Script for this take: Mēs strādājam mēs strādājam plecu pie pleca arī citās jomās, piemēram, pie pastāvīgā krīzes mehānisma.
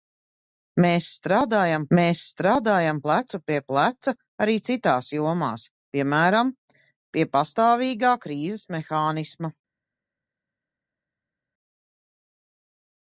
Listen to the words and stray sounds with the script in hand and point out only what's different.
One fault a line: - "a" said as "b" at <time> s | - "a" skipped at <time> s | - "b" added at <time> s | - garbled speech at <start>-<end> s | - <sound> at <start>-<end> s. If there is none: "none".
none